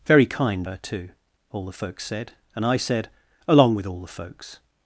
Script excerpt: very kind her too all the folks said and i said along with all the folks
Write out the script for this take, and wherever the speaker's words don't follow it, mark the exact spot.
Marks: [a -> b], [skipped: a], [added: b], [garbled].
very kind her too all the folks said and i said along with all the folks